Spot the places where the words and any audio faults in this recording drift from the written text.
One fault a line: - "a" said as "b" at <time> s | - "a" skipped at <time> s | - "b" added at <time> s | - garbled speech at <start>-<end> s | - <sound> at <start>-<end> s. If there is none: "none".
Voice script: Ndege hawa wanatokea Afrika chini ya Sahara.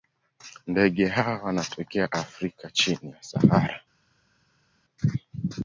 none